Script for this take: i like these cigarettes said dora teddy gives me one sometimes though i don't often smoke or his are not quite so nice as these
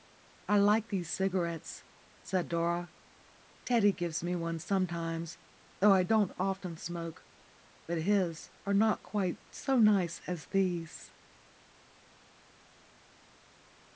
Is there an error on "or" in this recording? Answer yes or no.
yes